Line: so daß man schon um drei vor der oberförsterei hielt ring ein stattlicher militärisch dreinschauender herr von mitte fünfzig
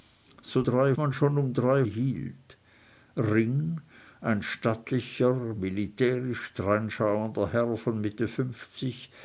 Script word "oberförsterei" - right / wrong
wrong